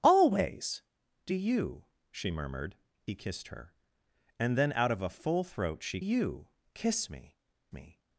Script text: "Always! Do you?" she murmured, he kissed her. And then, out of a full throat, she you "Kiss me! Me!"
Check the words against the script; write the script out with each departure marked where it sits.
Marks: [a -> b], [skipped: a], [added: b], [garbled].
"Always! Do you?" she murmured, he kissed her. And then, out of a full throat, she you "Kiss me! Me!"